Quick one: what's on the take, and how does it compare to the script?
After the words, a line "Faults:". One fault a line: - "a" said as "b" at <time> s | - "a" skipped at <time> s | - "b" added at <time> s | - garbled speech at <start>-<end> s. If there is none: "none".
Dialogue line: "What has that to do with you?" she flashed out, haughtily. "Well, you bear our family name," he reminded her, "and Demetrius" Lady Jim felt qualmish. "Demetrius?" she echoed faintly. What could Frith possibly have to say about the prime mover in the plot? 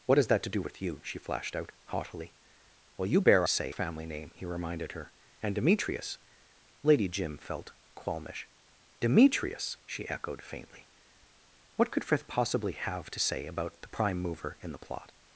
"What has that to do with you?" she flashed out, haughtily. "Well, you bear say family name," he reminded her, "and Demetrius" Lady Jim felt qualmish. "Demetrius?" she echoed faintly. What could Frith possibly have to say about the prime mover in the plot?
Faults:
- "our" said as "say" at 3.5 s